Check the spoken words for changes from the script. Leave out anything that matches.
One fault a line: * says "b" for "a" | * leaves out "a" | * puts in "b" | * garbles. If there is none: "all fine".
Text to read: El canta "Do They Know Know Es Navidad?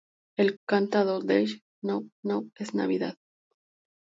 all fine